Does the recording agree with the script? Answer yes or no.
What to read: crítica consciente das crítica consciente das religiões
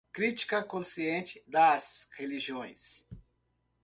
no